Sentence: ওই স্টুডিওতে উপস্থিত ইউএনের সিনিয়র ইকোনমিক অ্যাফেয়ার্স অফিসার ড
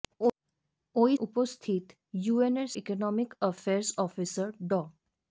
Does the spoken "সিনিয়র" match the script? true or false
false